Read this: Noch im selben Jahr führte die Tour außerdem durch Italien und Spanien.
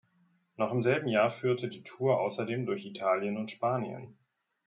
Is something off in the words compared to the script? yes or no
no